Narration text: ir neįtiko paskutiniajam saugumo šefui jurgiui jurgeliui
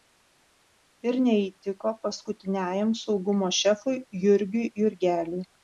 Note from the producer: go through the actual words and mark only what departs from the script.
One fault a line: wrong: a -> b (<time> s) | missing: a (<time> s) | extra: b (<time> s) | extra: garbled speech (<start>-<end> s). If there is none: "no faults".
no faults